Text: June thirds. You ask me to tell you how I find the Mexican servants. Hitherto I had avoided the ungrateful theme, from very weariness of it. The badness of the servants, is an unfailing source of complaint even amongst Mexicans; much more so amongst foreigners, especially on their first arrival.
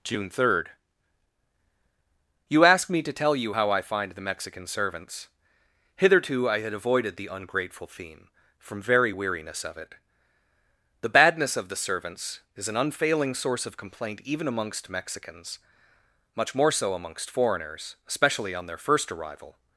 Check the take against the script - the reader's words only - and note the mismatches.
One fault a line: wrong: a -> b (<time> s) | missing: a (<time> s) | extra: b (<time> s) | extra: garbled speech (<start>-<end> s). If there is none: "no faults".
wrong: thirds -> third (0.3 s)